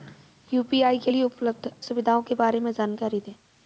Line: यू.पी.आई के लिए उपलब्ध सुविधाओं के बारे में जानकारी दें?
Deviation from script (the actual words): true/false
false